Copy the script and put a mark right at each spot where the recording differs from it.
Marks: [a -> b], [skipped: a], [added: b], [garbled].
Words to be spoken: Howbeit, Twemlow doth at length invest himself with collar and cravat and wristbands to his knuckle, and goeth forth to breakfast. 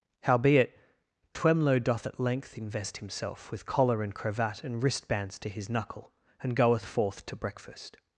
Howbeit, Twemlow doth at length invest himself with collar and cravat and wristbands to his knuckle, and goeth forth to breakfast.